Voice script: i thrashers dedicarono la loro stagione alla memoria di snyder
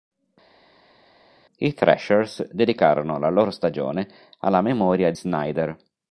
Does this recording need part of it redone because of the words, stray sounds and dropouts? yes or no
yes